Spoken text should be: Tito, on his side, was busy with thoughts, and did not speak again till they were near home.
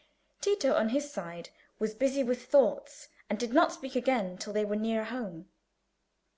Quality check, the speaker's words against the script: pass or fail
pass